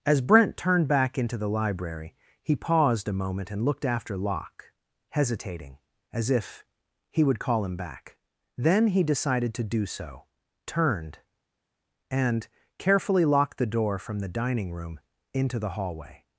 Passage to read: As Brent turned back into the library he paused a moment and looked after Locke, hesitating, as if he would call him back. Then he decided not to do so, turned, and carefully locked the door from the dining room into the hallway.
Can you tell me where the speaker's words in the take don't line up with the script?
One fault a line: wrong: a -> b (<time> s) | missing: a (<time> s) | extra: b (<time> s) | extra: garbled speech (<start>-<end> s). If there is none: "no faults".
missing: not (9.5 s)